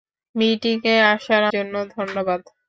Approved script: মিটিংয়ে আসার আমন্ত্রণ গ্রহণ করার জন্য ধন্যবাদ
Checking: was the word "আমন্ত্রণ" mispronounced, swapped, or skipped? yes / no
yes